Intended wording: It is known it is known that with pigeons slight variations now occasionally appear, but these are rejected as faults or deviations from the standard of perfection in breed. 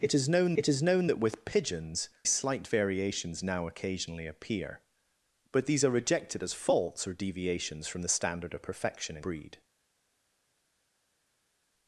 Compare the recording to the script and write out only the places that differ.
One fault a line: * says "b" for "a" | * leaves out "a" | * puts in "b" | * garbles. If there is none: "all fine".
all fine